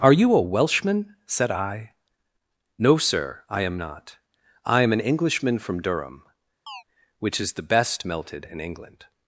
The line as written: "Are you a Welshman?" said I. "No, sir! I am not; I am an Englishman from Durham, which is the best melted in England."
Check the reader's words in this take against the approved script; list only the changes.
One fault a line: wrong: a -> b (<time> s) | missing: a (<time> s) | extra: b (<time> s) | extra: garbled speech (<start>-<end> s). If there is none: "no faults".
no faults